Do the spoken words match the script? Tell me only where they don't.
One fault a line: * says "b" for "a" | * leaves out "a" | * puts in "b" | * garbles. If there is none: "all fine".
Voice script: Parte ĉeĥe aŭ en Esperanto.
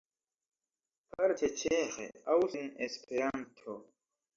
all fine